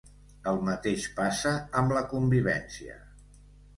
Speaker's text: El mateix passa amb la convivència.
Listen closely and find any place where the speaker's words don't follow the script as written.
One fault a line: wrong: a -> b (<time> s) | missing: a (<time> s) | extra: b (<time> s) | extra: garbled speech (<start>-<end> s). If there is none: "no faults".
no faults